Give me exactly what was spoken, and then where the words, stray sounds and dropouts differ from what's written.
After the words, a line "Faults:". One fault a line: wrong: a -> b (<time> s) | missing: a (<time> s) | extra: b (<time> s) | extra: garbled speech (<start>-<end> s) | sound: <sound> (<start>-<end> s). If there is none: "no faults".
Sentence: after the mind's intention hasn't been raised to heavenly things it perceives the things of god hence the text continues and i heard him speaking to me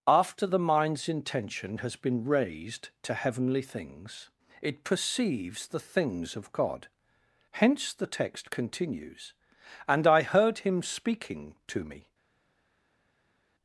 after the mind's intention has been raised to heavenly things it perceives the things of god hence the text continues and i heard him speaking to me
Faults:
wrong: hasn't -> has (1.8 s)